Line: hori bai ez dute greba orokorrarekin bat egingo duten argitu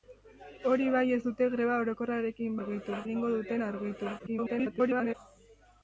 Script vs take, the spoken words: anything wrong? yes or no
yes